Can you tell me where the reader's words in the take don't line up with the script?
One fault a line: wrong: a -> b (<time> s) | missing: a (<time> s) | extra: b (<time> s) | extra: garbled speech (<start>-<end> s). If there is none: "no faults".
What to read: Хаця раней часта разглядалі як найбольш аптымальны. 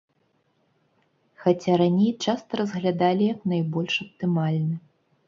no faults